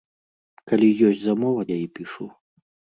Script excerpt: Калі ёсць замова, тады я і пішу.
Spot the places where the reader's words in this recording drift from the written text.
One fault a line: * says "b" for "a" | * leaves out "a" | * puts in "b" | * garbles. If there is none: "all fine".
* leaves out "тады"